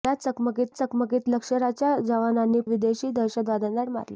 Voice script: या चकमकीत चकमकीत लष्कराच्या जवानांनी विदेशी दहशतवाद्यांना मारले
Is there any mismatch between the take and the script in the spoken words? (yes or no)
no